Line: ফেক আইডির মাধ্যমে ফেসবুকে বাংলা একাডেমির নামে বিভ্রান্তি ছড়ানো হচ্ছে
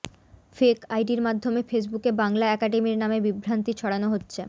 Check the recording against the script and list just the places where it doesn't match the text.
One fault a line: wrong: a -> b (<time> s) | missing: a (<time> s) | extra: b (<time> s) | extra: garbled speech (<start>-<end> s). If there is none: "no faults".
no faults